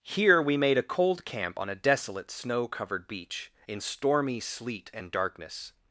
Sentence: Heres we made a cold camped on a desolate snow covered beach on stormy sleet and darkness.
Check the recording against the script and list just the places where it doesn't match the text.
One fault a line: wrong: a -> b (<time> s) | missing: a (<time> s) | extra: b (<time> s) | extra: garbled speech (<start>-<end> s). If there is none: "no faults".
wrong: Heres -> Here (0.0 s)
wrong: camped -> camp (1.2 s)
wrong: on -> in (3.7 s)